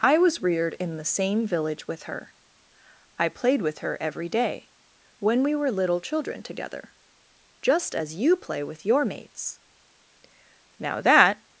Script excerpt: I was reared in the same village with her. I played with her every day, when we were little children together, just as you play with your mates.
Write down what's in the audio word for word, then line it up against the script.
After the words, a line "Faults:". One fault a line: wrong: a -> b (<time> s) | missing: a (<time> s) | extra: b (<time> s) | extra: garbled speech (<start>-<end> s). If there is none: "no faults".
I was reared in the same village with her. I played with her every day, when we were little children together, just as you play with your mates. Now that
Faults:
extra: Now that (10.8 s)